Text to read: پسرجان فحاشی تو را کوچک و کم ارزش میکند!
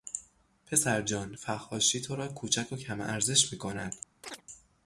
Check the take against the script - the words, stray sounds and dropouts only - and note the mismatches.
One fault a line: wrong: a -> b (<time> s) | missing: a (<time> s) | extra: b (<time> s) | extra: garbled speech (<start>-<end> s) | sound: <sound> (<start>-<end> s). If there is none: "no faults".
sound: chirp (4.2-4.4 s)